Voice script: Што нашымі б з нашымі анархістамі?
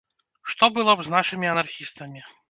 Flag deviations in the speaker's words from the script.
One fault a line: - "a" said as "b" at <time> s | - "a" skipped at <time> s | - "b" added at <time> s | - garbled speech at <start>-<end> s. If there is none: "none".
- "нашымі" said as "было" at 0.8 s